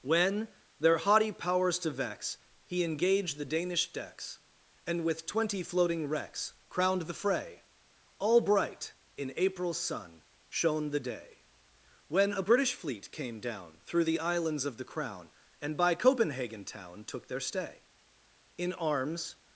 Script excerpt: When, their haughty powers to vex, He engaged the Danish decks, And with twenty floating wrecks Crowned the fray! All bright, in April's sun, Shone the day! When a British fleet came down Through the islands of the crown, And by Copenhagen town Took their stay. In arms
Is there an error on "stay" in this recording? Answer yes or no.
no